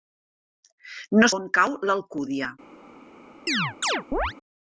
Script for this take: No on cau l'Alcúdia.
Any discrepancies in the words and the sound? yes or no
yes